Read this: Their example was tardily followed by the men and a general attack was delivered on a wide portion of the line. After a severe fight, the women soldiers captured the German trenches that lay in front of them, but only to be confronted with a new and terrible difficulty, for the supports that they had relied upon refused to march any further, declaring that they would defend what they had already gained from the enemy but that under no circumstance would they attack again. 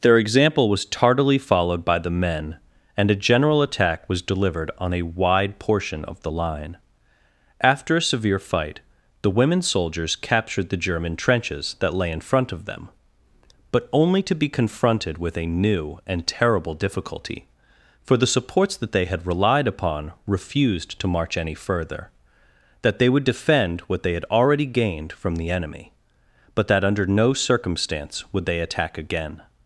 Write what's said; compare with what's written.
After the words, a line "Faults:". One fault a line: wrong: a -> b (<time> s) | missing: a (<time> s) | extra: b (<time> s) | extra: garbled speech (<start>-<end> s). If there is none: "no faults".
Their example was tardily followed by the men and a general attack was delivered on a wide portion of the line. After a severe fight, the women soldiers captured the German trenches that lay in front of them, but only to be confronted with a new and terrible difficulty, for the supports that they had relied upon refused to march any further, that they would defend what they had already gained from the enemy but that under no circumstance would they attack again.
Faults:
missing: declaring (22.1 s)